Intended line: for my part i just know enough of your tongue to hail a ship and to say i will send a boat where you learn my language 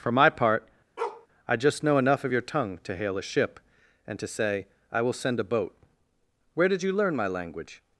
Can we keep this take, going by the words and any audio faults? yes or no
no